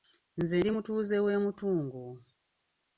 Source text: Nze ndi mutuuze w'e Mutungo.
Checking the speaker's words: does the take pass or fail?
pass